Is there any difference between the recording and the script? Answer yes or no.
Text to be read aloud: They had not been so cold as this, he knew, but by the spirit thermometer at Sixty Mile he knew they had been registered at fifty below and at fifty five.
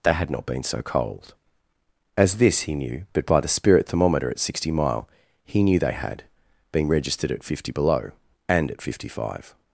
yes